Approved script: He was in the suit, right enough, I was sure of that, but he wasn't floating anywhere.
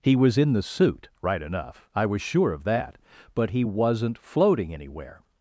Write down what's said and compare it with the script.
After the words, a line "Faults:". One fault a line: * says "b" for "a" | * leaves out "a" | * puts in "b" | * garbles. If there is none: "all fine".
He was in the suit, right enough, I was sure of that, but he wasn't floating anywhere.
Faults:
all fine